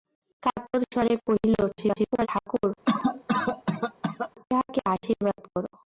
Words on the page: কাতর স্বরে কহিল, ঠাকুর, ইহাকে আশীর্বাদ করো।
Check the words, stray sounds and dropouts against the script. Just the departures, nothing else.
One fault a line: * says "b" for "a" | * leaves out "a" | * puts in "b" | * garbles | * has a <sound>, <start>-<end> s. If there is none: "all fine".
* garbles
* has a cough, 2.9-4.3 s